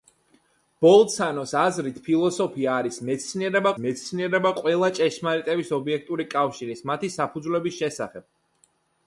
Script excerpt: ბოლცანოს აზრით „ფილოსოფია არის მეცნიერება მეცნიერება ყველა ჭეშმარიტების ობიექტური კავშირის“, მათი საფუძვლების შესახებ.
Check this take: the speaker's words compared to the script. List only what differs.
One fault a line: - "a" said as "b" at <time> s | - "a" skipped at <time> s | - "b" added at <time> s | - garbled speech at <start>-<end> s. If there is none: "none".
none